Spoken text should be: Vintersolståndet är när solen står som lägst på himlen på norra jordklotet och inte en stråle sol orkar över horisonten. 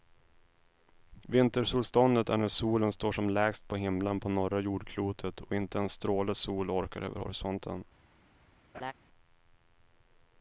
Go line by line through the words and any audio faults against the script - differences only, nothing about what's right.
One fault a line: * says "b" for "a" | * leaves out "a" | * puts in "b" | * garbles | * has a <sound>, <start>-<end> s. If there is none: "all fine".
* has a laugh, 8.7-8.9 s